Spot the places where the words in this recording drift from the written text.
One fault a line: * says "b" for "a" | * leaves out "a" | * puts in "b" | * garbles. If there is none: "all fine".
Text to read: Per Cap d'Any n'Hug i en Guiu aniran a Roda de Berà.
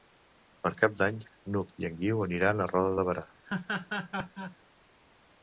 all fine